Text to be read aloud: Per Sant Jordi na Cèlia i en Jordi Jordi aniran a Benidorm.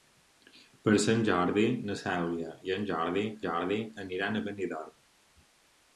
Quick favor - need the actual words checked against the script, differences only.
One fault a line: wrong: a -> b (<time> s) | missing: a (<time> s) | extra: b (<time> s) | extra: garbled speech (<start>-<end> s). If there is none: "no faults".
no faults